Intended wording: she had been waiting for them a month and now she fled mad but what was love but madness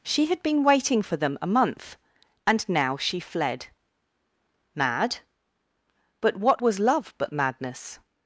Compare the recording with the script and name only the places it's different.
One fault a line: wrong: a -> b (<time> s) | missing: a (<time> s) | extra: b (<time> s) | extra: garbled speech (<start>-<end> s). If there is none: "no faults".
no faults